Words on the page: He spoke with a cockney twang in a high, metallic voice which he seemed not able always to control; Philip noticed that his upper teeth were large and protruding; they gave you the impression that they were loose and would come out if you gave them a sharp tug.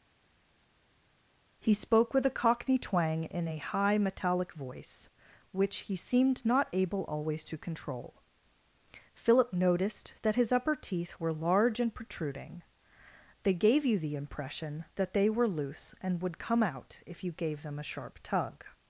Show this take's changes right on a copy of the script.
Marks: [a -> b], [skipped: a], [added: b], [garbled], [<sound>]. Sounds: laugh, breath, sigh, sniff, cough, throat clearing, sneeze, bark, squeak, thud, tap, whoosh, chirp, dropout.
He spoke with a cockney twang in a high, metallic voice which he seemed not able always to control; Philip noticed that his upper teeth were large and protruding; they gave you the impression that they were loose and would come out if you gave them a sharp tug.